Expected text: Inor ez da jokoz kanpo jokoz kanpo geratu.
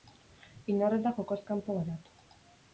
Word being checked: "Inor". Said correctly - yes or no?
yes